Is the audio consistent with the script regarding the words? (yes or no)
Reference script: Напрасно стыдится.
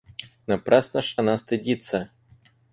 no